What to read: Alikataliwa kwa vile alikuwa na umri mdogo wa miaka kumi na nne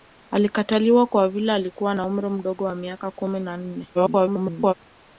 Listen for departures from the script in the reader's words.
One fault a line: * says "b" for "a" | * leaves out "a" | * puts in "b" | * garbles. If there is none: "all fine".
* garbles